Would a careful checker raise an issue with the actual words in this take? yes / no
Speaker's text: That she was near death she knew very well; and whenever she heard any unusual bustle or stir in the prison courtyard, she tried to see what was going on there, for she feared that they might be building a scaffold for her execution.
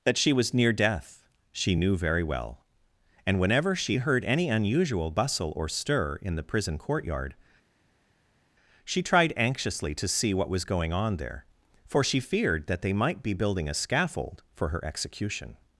yes